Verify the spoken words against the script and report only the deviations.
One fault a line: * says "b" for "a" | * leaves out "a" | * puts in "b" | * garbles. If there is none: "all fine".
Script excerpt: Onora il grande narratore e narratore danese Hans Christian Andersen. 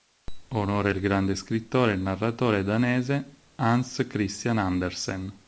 * says "scrittore" for "narratore"